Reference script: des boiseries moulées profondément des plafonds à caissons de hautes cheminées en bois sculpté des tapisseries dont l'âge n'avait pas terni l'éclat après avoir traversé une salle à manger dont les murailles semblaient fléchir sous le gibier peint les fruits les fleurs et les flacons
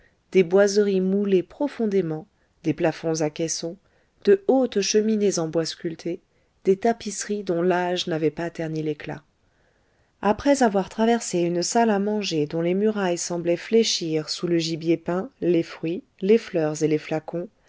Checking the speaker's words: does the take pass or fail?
pass